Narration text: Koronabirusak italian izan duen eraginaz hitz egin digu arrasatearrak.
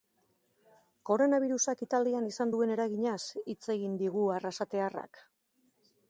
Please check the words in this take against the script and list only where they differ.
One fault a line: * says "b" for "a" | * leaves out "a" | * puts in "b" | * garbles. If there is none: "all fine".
all fine